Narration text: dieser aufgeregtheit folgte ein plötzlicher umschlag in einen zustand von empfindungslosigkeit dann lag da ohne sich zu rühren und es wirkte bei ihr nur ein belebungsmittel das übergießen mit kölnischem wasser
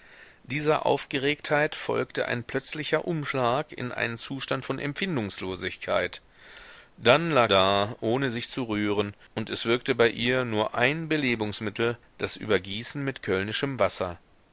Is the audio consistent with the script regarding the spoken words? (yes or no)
yes